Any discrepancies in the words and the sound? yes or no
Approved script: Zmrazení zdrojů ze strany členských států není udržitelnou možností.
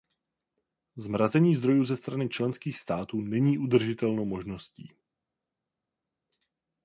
no